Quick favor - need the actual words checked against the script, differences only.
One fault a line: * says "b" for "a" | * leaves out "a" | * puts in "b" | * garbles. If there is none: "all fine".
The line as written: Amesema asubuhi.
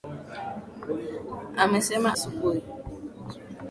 all fine